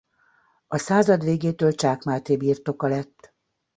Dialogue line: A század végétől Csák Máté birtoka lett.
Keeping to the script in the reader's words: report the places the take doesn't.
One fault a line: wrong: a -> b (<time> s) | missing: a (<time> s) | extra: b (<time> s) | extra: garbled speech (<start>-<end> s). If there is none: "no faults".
no faults